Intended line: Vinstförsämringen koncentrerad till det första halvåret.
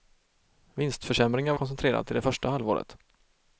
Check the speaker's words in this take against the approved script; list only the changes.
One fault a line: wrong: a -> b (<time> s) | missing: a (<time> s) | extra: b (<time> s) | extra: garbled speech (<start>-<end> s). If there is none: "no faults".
no faults